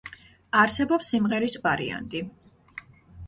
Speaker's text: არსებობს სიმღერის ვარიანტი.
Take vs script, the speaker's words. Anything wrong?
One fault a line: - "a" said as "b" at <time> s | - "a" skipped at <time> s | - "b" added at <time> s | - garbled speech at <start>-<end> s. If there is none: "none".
none